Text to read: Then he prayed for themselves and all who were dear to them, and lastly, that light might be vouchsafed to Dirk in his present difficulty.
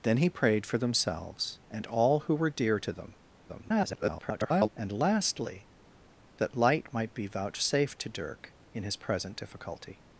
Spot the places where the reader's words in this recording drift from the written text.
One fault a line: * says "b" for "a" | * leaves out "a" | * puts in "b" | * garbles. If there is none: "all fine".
* garbles